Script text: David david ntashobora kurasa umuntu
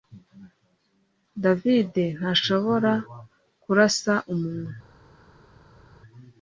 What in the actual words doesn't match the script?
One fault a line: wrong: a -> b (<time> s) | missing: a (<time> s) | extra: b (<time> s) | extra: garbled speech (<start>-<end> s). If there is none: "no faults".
missing: david (1.9 s)